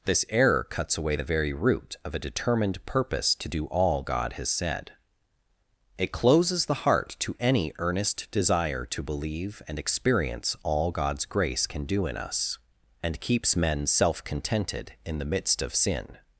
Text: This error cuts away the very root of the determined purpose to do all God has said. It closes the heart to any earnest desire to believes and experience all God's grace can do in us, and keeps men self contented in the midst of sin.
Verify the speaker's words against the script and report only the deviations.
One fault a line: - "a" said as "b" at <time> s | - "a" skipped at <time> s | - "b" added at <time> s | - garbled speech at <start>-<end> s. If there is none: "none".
- "the" said as "a" at 2.1 s
- "believes" said as "believe" at 9.0 s